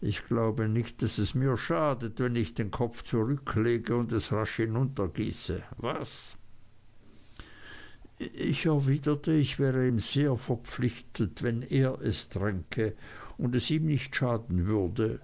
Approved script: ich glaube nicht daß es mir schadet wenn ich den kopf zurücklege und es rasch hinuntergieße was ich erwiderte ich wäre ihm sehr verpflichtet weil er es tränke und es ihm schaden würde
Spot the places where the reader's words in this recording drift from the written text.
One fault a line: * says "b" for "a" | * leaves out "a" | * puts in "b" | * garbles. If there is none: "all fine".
* says "wenn" for "weil"
* puts in "nicht"